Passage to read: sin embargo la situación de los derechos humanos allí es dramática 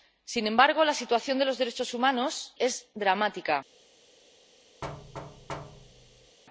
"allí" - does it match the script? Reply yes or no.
no